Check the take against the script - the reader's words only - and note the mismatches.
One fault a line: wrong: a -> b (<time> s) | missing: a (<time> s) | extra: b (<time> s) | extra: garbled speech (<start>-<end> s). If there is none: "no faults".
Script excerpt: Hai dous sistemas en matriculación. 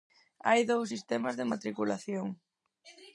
wrong: en -> de (1.4 s)